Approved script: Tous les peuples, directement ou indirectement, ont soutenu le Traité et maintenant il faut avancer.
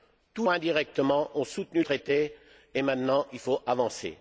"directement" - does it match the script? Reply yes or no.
no